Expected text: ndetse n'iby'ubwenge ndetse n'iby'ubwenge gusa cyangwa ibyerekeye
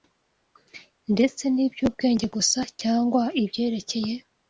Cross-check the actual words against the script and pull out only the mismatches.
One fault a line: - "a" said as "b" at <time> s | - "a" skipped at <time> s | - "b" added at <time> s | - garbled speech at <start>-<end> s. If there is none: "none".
- "ndetse n'iby'ubwenge" skipped at 2.2 s